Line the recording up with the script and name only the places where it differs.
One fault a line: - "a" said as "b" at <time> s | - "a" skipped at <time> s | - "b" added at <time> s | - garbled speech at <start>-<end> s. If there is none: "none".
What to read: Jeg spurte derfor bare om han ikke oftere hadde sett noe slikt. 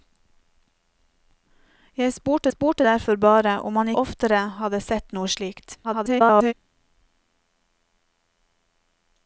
- "spurte" added at 2.5 s
- "ikke" skipped at 3.9 s
- garbled speech at 5.8-6.5 s